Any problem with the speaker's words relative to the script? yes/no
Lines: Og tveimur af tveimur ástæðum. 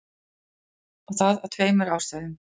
yes